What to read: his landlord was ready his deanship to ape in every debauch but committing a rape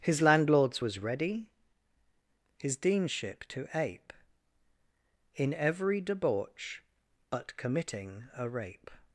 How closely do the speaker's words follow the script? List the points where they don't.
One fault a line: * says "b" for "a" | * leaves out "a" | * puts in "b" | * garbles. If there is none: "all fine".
* says "landlords" for "landlord"